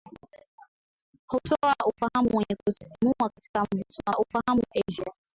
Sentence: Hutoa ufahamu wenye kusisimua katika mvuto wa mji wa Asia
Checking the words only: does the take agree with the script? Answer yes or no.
no